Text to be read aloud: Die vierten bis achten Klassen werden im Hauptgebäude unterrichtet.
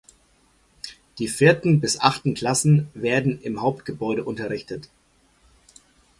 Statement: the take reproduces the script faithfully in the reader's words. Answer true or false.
true